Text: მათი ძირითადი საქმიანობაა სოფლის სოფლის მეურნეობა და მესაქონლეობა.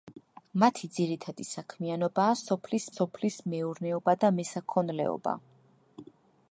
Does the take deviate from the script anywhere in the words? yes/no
no